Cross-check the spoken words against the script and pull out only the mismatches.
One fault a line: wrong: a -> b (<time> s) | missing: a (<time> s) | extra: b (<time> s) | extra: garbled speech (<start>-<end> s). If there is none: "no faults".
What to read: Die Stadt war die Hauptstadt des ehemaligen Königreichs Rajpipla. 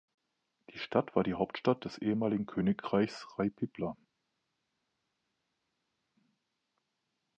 no faults